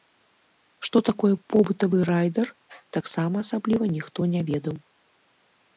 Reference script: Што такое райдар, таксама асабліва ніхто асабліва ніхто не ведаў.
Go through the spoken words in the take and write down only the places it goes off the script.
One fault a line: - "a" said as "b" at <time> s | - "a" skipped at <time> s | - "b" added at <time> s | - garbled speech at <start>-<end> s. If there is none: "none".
- "побытавы" added at 1.6 s
- "асабліва ніхто" skipped at 4.2 s